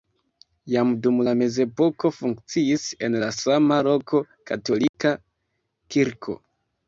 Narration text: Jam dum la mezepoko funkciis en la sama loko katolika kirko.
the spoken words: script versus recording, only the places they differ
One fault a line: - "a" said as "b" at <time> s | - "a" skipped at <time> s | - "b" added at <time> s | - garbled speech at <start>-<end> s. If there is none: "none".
none